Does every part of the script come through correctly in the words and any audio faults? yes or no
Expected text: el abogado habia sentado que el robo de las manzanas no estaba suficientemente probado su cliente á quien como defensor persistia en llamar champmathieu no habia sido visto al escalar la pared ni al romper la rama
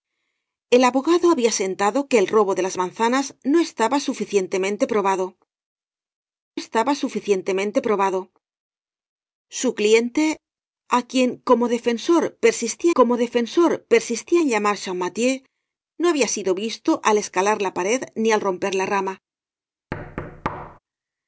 no